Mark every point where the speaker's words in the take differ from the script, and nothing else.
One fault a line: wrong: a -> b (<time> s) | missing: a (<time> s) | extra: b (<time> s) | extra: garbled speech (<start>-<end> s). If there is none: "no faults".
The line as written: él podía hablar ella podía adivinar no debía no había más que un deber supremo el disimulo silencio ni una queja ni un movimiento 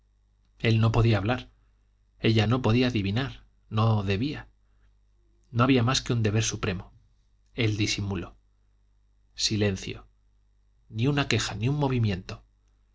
extra: no (0.8 s)
extra: no (2.4 s)